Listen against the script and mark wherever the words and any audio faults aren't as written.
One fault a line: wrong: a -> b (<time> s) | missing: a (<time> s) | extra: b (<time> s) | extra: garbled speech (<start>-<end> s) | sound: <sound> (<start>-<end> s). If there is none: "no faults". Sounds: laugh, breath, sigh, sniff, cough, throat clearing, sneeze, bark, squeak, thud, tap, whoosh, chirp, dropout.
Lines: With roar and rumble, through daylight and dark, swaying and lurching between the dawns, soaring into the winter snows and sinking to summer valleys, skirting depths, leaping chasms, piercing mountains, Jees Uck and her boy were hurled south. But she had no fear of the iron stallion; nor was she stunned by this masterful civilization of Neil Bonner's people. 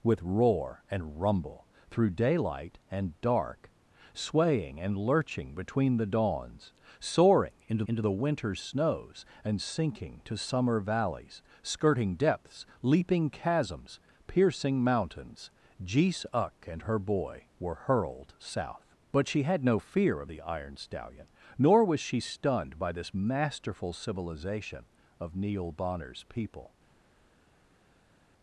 extra: into (7.9 s)